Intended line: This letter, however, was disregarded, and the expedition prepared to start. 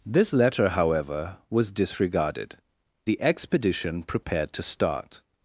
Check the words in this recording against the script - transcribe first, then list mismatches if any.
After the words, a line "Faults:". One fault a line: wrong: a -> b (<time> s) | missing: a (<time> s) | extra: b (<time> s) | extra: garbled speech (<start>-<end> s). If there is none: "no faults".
This letter, however, was disregarded, the expedition prepared to start.
Faults:
missing: and (2.6 s)